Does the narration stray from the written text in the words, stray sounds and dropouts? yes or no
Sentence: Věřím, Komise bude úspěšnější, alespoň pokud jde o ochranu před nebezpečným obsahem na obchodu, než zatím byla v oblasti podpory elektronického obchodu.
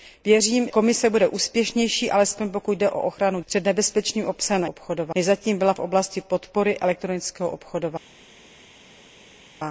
no